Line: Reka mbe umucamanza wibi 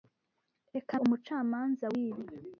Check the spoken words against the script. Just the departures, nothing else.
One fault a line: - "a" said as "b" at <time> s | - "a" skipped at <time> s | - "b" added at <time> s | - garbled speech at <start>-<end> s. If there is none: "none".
- "mbe" skipped at 0.9 s